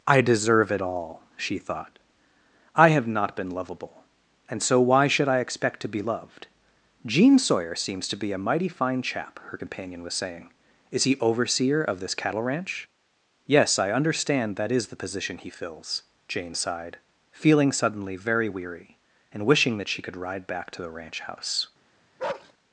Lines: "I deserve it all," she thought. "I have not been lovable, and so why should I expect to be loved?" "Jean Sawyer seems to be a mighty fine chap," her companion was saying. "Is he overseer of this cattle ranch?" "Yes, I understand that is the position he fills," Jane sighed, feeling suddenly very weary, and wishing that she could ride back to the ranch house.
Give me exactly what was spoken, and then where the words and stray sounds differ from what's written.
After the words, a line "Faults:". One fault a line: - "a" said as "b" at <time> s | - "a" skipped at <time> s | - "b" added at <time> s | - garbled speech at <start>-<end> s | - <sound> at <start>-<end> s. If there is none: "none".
"I deserve it all," she thought. "I have not been lovable, and so why should I expect to be loved?" "Jean Sawyer seems to be a mighty fine chap," her companion was saying. "Is he overseer of this cattle ranch?" "Yes, I understand that is the position he fills," Jane sighed, feeling suddenly very weary, and wishing that she could ride back to the ranch house.
Faults:
- bark at 22.2-22.5 s